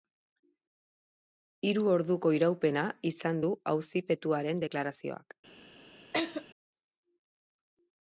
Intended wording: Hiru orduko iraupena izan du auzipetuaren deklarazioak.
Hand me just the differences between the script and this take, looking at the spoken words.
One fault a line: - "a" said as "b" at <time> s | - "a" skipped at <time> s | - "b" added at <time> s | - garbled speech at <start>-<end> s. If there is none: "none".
none